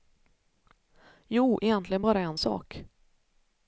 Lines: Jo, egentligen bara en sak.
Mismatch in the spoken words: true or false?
false